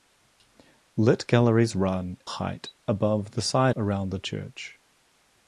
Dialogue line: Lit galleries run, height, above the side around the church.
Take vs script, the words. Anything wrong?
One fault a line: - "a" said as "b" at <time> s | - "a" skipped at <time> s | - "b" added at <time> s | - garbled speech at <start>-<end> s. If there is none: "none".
none